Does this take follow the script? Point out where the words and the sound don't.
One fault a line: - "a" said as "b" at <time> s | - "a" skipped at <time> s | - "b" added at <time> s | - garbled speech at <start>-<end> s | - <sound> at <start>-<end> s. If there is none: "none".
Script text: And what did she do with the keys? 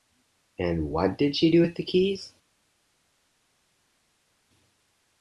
none